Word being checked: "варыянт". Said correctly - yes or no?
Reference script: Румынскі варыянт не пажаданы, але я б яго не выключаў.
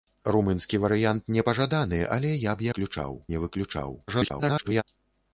yes